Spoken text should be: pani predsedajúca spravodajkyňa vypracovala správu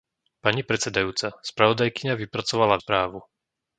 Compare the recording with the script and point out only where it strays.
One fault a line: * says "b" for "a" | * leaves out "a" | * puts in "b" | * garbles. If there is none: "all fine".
all fine